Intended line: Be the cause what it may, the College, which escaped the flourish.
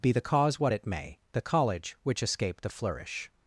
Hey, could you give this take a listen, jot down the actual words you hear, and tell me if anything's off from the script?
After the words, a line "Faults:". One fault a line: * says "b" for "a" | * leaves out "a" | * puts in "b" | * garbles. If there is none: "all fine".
Be the cause what it may, the College, which escaped the flourish.
Faults:
all fine